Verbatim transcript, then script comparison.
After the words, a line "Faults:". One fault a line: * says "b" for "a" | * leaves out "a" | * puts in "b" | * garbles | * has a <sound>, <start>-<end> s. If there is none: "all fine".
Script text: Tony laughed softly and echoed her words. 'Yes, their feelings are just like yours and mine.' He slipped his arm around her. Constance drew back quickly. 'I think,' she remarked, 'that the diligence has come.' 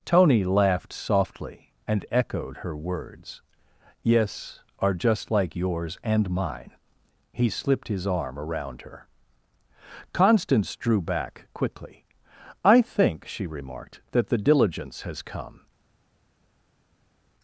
Tony laughed softly and echoed her words. 'Yes, are just like yours and mine.' He slipped his arm around her. Constance drew back quickly. 'I think,' she remarked, 'that the diligence has come.'
Faults:
* leaves out "their feelings"